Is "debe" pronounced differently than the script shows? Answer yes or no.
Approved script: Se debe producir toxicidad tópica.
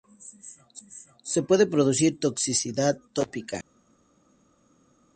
yes